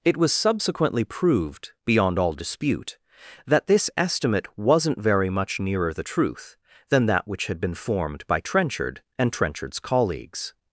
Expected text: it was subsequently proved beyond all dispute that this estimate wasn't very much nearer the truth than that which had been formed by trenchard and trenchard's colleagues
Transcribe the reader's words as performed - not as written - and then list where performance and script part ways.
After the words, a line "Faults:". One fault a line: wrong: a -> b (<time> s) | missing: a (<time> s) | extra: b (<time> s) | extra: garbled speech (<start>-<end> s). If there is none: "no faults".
it was subsequently proved beyond all dispute that this estimate wasn't very much nearer the truth than that which had been formed by trenchard and trenchard's colleagues
Faults:
no faults